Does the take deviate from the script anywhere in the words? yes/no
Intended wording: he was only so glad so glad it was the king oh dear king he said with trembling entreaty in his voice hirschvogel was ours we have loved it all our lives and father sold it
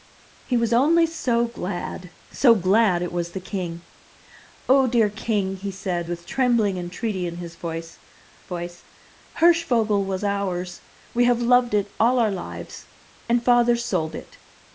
yes